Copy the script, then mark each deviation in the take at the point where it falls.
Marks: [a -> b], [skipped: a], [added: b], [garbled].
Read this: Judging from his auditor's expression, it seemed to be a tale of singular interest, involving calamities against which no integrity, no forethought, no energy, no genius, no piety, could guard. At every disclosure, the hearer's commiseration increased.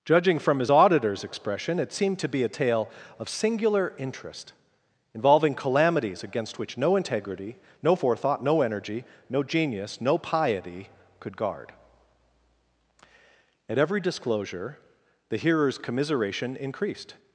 Judging from his auditor's expression, it seemed to be a tale of singular interest, involving calamities against which no integrity, no forethought, no energy, no genius, no piety, could guard. At every disclosure, the hearer's commiseration increased.